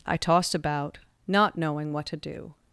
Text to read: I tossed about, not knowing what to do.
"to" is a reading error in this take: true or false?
false